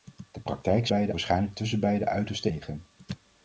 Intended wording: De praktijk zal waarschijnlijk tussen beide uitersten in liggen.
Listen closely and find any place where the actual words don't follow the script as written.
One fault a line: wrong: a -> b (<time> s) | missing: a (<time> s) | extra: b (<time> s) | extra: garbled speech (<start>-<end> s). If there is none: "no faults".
wrong: zal -> beide (0.9 s)
missing: in (2.5 s)